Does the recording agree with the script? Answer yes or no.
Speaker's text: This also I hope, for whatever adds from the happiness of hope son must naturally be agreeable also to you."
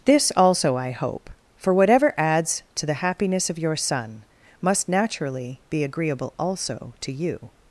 no